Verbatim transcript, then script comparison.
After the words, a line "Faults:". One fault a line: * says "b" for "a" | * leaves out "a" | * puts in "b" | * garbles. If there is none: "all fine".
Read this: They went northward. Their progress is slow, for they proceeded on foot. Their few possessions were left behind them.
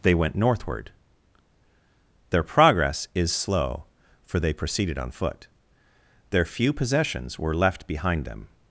They went northward. Their progress is slow, for they proceeded on foot. Their few possessions were left behind them.
Faults:
all fine